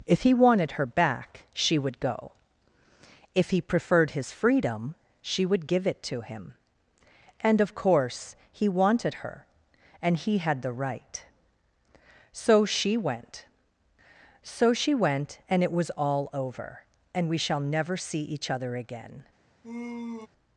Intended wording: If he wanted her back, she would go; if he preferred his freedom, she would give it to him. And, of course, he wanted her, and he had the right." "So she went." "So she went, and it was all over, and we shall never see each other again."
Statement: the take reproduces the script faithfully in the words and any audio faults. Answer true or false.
false